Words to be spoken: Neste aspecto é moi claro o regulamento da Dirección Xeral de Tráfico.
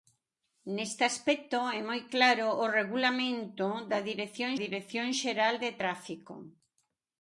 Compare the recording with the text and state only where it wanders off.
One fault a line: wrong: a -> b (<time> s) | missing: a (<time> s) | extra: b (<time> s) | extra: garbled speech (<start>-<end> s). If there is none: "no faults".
extra: Dirección (4.6 s)